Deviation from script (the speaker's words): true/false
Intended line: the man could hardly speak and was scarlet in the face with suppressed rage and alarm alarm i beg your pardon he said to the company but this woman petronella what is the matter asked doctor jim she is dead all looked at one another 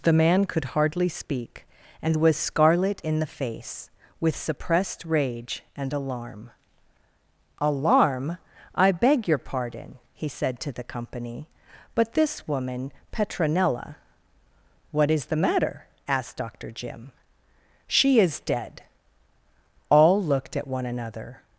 false